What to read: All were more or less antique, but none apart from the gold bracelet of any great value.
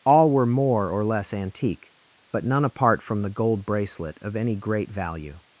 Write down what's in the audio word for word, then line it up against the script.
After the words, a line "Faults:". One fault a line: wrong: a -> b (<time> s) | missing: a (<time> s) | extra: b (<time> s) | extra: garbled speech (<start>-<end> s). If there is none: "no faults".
All were more or less antique, but none apart from the gold bracelet of any great value.
Faults:
no faults